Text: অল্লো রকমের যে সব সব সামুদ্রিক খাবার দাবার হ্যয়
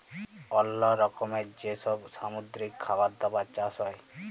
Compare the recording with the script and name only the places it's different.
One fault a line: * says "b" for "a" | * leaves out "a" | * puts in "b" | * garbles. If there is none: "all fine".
* leaves out "সব"
* puts in "চাষ"